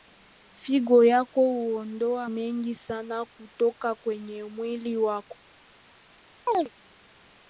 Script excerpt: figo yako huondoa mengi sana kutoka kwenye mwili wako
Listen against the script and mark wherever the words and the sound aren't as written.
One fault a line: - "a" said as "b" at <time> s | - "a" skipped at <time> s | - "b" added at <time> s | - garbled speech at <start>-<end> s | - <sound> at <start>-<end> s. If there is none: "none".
- chirp at 6.5-6.7 s